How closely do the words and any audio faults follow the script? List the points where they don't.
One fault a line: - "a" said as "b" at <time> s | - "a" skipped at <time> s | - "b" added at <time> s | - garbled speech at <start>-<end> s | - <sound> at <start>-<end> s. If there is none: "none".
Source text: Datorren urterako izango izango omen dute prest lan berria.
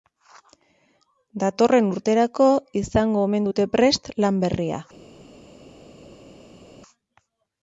- "izango" skipped at 3.2 s